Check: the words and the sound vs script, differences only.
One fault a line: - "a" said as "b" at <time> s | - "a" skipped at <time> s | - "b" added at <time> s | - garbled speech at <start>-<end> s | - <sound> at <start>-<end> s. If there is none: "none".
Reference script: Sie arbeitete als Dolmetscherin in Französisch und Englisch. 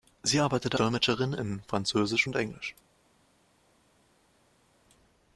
- "als" skipped at 0.8 s